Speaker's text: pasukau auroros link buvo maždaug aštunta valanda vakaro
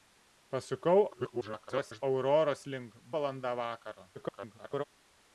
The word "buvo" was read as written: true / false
false